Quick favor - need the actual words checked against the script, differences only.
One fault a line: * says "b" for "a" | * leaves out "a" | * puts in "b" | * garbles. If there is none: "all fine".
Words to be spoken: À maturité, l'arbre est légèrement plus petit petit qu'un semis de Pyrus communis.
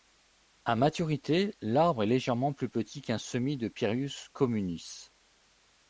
* leaves out "petit"